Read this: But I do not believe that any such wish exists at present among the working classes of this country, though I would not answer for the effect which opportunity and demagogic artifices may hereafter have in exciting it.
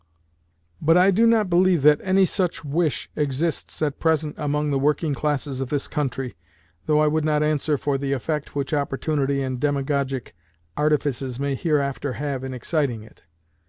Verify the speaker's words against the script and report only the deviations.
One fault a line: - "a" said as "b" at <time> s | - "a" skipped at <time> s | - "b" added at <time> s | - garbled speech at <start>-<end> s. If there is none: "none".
none